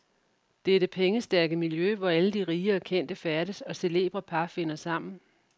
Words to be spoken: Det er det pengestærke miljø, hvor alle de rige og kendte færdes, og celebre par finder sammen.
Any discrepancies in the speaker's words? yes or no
no